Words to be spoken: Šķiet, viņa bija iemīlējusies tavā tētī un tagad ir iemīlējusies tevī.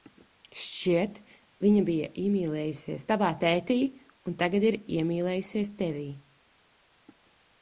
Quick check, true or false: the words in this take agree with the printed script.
true